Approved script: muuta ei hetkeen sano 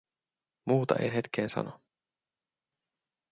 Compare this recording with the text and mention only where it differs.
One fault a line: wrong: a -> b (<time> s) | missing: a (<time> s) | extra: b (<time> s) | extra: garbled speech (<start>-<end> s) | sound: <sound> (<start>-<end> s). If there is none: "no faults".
no faults